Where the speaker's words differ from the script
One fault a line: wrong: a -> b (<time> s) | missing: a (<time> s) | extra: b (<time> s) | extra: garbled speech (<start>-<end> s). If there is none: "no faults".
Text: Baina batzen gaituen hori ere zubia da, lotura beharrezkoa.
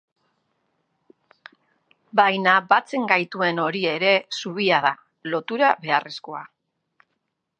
no faults